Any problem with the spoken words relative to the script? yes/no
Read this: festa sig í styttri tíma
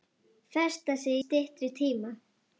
yes